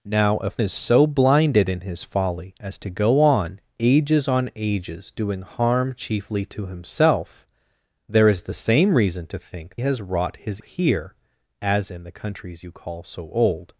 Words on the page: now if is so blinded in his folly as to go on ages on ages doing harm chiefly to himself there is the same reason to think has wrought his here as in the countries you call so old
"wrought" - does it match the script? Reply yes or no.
yes